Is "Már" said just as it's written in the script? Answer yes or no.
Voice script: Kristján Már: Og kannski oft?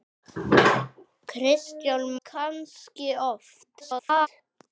no